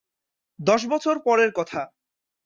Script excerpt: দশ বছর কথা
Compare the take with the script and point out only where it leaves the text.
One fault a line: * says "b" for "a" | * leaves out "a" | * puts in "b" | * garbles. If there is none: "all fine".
* puts in "পরের"